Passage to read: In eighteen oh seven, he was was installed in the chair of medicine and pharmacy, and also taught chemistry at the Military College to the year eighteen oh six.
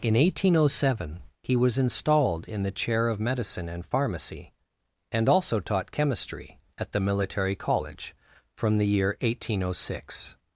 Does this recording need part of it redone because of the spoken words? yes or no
yes